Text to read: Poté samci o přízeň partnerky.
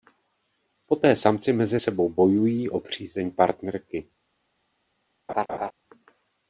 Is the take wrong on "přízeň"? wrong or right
right